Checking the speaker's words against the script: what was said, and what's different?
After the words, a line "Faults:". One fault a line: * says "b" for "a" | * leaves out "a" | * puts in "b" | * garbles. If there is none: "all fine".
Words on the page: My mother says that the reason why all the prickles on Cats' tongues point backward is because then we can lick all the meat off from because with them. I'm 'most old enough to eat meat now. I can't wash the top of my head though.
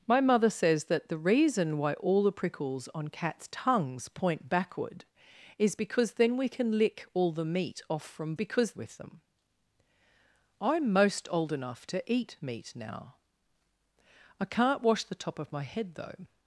My mother says that the reason why all the prickles on Cats' tongues point backward is because then we can lick all the meat off from because with them. I'm 'most old enough to eat meat now. I can't wash the top of my head though.
Faults:
all fine